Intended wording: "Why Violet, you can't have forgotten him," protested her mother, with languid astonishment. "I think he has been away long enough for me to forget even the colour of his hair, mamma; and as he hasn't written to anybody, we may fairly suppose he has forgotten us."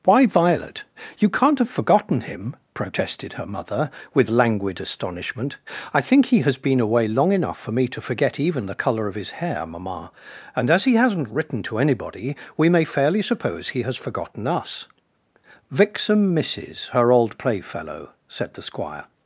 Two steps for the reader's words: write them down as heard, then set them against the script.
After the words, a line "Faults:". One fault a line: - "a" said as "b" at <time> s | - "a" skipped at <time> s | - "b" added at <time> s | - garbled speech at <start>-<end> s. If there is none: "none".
"Why Violet, you can't have forgotten him," protested her mother, with languid astonishment. "I think he has been away long enough for me to forget even the colour of his hair, mamma; and as he hasn't written to anybody, we may fairly suppose he has forgotten us." "Vixen misses her old playfellow," said the Squire
Faults:
- "Vixen misses her old playfellow said the Squire" added at 15.7 s